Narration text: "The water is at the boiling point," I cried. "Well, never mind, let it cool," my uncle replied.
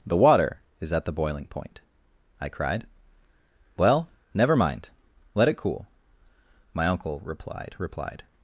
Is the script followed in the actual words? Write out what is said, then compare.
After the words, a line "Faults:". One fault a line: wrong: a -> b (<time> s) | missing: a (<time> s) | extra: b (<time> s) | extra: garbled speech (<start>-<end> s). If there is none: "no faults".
"The water is at the boiling point," I cried. "Well, never mind, let it cool," my uncle replied replied.
Faults:
extra: replied (7.8 s)